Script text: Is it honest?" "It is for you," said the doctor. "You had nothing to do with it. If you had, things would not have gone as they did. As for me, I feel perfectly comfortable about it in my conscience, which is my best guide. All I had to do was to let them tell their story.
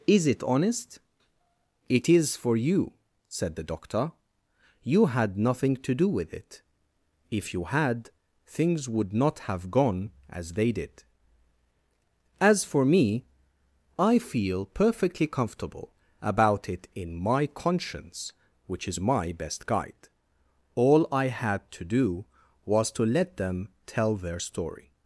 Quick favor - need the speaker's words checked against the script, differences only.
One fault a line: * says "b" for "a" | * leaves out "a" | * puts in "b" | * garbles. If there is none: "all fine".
all fine